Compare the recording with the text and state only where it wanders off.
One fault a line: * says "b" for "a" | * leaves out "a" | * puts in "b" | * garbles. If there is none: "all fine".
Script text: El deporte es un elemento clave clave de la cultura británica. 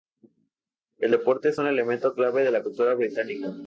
* leaves out "clave"